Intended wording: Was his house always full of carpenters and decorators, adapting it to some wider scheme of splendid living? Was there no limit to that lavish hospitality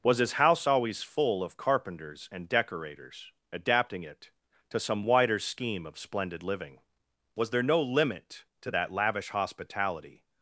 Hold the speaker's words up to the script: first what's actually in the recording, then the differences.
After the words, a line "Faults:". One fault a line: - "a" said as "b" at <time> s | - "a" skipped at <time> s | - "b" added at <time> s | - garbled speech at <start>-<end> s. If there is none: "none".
Was his house always full of carpenters and decorators, adapting it to some wider scheme of splendid living? Was there no limit to that lavish hospitality
Faults:
none